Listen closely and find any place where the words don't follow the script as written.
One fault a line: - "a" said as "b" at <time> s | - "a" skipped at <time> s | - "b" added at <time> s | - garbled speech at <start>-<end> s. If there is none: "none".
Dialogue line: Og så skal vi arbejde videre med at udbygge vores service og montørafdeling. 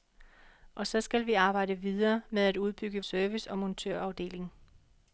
- "vores" skipped at 3.0 s